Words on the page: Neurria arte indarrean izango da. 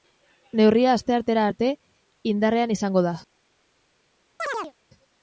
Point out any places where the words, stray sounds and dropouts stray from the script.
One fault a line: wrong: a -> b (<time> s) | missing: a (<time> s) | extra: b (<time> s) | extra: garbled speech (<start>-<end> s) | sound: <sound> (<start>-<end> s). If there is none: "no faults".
extra: asteartera (0.9 s)
sound: chirp (4.4-4.7 s)